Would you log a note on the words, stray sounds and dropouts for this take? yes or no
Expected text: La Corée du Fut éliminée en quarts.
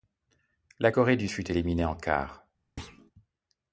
yes